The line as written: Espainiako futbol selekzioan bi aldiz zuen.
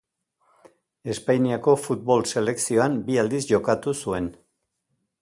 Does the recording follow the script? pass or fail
fail